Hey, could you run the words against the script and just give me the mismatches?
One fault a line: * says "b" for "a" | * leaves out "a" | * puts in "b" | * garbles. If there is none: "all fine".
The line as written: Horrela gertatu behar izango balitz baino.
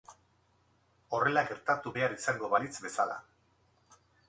* says "bezala" for "baino"